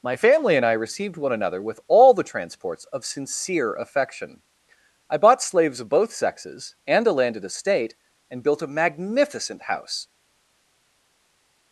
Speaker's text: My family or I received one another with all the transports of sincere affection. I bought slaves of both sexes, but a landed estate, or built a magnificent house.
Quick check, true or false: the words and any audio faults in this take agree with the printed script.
false